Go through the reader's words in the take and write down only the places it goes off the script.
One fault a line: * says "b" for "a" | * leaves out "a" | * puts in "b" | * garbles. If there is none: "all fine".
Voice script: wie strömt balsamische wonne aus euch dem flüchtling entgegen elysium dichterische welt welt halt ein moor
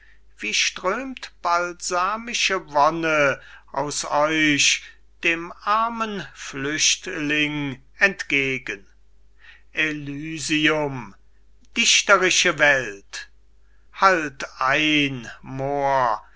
* puts in "armen"
* leaves out "welt"